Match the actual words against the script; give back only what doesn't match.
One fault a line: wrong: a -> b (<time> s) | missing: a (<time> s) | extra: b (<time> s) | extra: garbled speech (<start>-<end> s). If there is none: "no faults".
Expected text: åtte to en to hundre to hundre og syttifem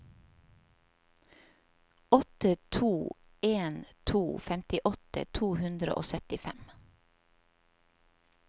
wrong: hundre -> femtiåtte (4.4 s)